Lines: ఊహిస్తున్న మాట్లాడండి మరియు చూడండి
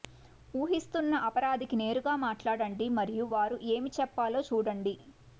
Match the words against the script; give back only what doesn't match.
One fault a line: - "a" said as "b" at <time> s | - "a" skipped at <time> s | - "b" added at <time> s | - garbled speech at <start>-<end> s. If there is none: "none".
- "అపరాధికి నేరుగా" added at 1.3 s
- "వారు ఏమి చెప్పాలో" added at 3.3 s